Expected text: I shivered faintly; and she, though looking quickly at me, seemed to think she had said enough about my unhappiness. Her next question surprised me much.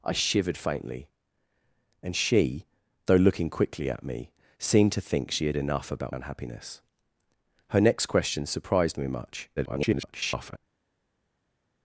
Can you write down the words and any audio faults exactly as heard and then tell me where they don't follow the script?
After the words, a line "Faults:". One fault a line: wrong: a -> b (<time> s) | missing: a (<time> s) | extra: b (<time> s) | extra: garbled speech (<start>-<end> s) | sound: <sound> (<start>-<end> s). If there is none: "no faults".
I shivered faintly; and she, though looking quickly at me, seemed to think she had enough about unhappiness. Her next question surprised me much. [garbled]
Faults:
missing: said (5.6 s)
missing: my (6.2 s)
extra: garbled speech (9.6-10.6 s)